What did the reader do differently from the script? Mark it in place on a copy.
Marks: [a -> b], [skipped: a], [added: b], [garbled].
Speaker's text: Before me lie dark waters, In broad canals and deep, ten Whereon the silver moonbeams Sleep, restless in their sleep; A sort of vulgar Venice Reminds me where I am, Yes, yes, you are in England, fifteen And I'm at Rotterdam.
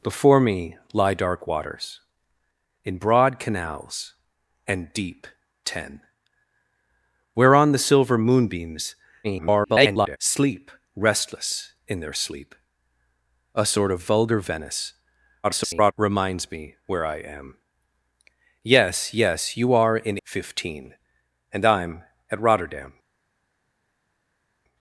Before me lie dark waters, In broad canals and deep, ten Whereon the silver moonbeams [garbled] Sleep, restless in their sleep; A sort of vulgar Venice [garbled] Reminds me where I am, Yes, yes, you are in [skipped: England,] fifteen And I'm at Rotterdam.